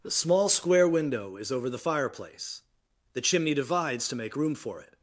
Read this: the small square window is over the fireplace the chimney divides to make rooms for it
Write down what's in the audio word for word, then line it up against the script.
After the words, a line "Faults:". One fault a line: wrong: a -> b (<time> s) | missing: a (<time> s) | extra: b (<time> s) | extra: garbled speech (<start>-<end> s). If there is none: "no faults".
the small square window is over the fireplace the chimney divides to make room for it
Faults:
wrong: rooms -> room (4.4 s)